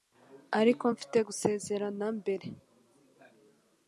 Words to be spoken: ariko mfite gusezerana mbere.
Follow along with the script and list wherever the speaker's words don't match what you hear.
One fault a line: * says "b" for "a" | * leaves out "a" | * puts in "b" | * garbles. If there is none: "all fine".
all fine